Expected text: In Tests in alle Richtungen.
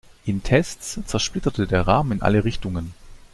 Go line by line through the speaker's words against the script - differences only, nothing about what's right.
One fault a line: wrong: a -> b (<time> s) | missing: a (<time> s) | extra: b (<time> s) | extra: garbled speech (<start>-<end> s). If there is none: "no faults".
extra: zersplitterte der Rahmen (1.0 s)